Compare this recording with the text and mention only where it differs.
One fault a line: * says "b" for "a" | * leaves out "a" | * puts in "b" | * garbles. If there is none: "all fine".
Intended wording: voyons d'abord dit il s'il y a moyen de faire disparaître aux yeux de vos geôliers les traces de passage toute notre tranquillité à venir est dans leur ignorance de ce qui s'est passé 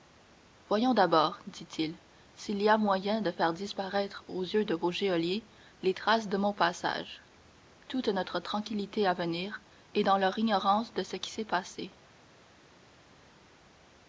* puts in "mon"